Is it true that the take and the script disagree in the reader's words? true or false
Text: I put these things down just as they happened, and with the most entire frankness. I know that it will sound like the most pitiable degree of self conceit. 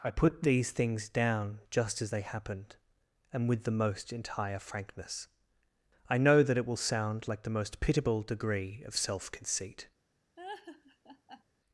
false